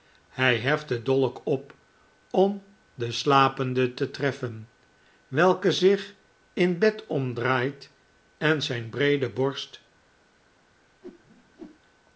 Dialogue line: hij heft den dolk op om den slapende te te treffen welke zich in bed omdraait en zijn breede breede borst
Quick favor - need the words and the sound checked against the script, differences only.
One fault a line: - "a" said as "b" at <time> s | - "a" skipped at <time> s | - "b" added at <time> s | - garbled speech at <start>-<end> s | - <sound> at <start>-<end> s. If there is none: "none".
- "te" skipped at 4.1 s
- "breede" skipped at 9.3 s
- whoosh at 11.0-11.8 s